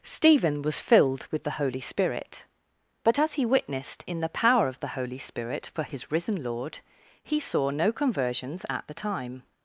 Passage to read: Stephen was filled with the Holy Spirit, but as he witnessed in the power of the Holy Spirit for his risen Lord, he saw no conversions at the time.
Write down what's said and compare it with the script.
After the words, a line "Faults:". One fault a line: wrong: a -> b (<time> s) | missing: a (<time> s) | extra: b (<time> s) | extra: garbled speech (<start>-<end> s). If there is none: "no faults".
Stephen was filled with the Holy Spirit, but as he witnessed in the power of the Holy Spirit for his risen Lord, he saw no conversions at the time.
Faults:
no faults